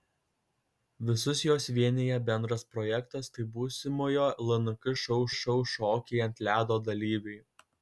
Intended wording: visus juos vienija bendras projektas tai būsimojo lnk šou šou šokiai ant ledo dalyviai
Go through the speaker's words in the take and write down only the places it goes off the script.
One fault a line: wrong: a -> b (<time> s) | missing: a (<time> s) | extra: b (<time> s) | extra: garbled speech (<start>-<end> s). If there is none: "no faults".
no faults